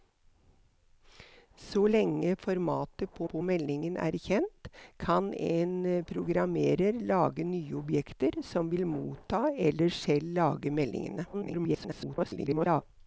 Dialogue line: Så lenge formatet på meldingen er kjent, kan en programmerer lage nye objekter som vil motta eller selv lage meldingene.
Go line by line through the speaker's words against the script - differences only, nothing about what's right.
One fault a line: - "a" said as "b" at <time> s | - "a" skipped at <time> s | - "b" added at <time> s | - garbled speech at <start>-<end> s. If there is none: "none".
- "på" added at 3.3 s
- garbled speech at 11.3-12.8 s